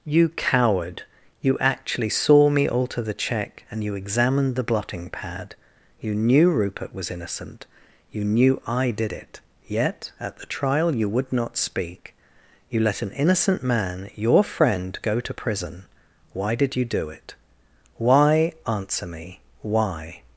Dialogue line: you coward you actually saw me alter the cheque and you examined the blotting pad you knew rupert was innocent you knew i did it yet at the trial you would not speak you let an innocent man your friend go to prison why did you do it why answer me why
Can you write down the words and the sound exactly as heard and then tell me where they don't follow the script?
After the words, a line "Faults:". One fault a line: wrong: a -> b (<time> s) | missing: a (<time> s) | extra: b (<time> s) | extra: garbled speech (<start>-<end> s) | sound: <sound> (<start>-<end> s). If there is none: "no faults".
you coward you actually saw me alter the cheque and you examined the blotting pad you knew rupert was innocent you knew i did it yet at the trial you would not speak you let an innocent man your friend go to prison why did you do it why answer me why
Faults:
no faults